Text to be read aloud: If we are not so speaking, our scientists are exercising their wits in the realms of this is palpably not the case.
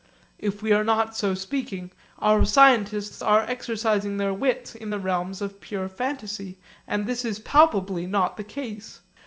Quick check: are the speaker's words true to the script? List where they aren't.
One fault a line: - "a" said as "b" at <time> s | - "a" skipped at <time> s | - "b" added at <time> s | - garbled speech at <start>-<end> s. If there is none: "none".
- "pure fantasy and" added at 5.6 s